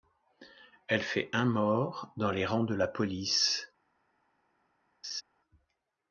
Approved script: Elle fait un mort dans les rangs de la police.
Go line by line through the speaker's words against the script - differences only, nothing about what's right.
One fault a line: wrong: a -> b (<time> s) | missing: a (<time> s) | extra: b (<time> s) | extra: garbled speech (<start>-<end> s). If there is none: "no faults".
no faults